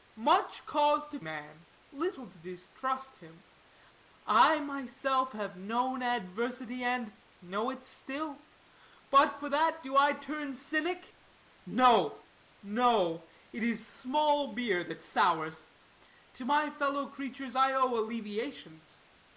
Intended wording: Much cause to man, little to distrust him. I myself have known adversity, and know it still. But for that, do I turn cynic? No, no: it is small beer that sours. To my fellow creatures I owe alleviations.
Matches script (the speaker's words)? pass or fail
pass